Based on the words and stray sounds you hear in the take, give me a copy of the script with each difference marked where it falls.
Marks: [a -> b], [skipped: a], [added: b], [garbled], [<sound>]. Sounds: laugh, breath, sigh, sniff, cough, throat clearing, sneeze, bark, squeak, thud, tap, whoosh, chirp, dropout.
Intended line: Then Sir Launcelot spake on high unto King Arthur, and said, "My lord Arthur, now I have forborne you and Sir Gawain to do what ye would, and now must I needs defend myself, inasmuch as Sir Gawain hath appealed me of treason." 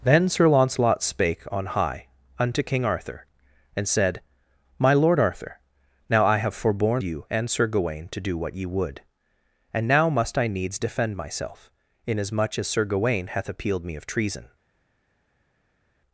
Then Sir Launcelot spake on high unto King Arthur, and said, "My lord Arthur, now I have forborne you and Sir Gawain to do what ye would, and now must I needs defend myself, inasmuch as Sir Gawain hath appealed me of treason."